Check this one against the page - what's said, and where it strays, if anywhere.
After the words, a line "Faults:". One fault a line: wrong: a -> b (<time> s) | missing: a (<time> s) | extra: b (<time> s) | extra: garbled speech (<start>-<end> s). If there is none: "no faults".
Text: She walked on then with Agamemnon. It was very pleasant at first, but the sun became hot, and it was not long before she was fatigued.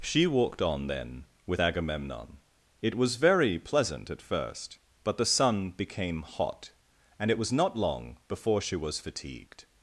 She walked on then with Agamemnon. It was very pleasant at first, but the sun became hot, and it was not long before she was fatigued.
Faults:
no faults